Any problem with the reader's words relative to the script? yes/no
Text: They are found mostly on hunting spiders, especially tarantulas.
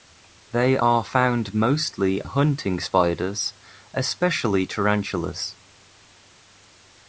yes